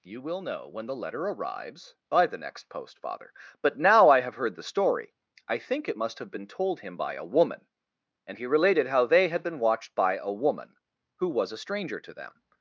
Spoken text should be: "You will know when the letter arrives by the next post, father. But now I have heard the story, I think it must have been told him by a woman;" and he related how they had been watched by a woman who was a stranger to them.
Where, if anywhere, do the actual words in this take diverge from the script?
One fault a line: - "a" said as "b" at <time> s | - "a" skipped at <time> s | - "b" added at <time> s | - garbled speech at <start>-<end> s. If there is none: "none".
none